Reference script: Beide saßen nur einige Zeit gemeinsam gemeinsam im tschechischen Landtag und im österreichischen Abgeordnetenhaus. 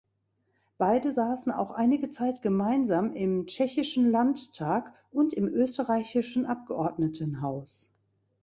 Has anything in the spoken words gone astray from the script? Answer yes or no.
yes